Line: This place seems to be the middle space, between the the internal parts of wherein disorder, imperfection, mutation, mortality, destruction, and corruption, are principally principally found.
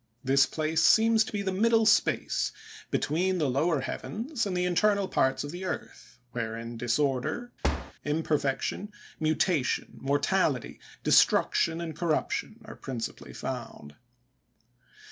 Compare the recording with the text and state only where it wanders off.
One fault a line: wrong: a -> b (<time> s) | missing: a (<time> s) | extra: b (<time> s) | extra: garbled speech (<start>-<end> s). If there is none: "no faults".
extra: lower heavens and (3.5 s)
extra: the earth (5.5 s)
missing: principally (13.3 s)